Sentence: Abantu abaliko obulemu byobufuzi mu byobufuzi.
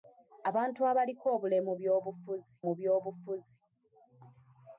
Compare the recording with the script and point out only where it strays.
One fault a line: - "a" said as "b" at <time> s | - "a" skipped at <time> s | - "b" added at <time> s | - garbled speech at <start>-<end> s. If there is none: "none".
none